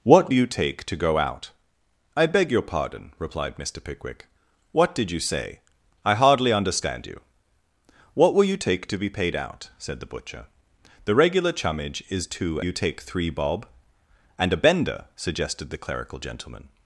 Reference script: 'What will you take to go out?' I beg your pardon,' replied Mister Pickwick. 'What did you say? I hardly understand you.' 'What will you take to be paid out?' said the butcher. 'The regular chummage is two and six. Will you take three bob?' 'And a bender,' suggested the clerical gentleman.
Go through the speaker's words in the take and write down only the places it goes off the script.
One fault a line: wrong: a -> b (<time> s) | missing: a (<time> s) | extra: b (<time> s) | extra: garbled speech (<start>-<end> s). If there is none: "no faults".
missing: will (0.3 s)
missing: and six Will (12.6 s)